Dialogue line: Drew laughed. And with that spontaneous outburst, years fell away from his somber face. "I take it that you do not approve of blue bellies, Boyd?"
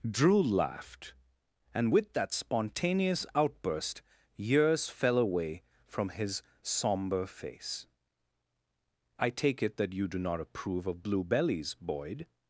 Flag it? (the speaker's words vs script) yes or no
no